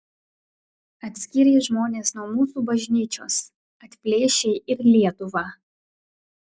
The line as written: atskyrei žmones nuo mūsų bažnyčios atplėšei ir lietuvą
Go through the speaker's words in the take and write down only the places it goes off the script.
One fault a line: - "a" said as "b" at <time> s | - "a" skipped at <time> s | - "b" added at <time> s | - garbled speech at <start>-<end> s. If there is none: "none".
none